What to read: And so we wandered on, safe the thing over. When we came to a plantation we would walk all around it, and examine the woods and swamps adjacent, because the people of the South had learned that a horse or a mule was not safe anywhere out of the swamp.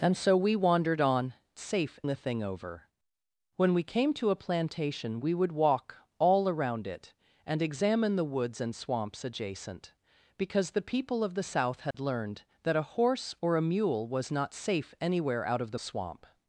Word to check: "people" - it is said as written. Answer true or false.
true